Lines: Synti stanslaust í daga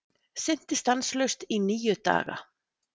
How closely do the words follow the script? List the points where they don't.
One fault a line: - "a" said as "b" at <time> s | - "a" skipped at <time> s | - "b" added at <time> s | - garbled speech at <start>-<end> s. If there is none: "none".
- "níu" added at 1.7 s